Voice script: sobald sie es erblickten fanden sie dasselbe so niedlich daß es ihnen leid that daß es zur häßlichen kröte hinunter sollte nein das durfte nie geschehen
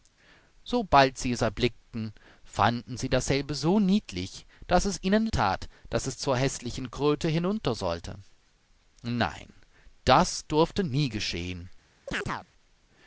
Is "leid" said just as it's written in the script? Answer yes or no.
no